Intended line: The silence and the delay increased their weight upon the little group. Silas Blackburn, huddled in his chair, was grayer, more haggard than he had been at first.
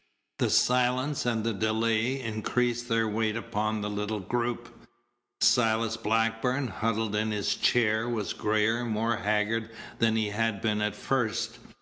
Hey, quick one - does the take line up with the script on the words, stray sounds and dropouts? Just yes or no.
yes